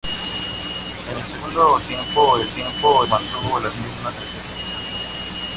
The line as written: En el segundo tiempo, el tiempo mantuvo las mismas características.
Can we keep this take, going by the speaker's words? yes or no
yes